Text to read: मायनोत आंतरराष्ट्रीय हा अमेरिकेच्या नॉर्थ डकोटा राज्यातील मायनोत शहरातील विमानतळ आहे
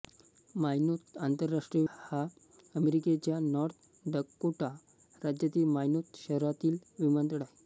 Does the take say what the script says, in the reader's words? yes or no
yes